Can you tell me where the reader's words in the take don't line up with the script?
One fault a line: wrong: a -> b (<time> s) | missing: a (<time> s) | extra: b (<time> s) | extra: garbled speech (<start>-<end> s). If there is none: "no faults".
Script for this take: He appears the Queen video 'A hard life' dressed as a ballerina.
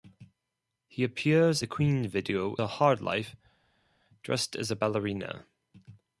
no faults